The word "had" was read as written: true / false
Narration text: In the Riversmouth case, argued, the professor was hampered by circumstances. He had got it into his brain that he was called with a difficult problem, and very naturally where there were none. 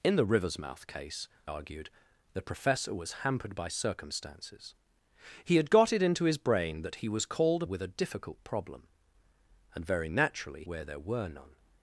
true